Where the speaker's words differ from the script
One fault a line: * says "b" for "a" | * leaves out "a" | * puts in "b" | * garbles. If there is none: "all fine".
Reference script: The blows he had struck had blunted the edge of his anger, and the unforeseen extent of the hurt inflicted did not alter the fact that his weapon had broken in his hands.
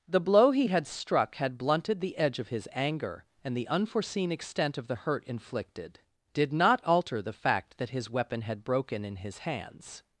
* says "blow" for "blows"